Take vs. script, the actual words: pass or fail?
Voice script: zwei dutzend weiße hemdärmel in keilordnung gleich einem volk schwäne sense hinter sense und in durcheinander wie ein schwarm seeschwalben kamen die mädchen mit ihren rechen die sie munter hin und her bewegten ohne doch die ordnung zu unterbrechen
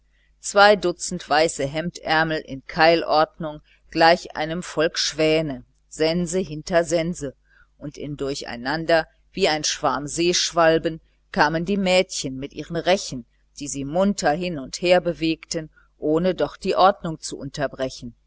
pass